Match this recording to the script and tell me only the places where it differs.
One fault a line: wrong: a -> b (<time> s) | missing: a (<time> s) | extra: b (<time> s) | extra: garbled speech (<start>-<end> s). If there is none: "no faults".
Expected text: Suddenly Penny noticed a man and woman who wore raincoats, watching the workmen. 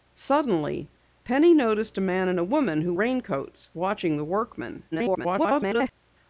missing: wore (2.9 s)
extra: garbled speech (4.9-5.9 s)